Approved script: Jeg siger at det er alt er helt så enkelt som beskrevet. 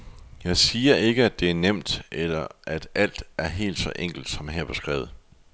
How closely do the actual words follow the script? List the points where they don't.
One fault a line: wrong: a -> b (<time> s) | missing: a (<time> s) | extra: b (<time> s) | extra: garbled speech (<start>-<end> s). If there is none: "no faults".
extra: ikke (0.9 s)
extra: nemt eller at (1.5 s)
extra: her (4.5 s)